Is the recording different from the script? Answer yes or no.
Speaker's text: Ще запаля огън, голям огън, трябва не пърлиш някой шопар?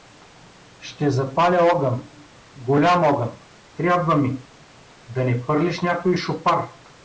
yes